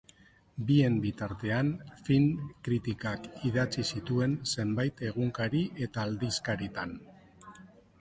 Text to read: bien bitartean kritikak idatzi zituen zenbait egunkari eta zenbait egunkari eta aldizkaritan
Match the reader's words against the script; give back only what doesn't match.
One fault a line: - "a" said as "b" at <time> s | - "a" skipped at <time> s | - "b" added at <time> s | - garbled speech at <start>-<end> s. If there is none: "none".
- "film" added at 2.1 s
- "zenbait egunkari eta" skipped at 6.1 s